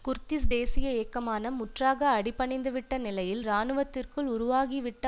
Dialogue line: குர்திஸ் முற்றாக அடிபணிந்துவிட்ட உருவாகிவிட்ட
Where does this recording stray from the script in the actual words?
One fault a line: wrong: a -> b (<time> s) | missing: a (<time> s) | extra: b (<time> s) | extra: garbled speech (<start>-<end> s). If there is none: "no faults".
extra: தேசிய இயக்கமான (0.5 s)
extra: நிலையில் இராணுவத்திற்குள் (3.0 s)